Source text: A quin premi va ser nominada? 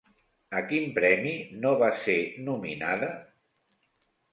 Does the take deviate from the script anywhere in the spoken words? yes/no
yes